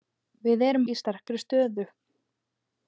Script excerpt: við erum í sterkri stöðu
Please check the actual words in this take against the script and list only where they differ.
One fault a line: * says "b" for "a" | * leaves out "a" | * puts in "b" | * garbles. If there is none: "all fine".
all fine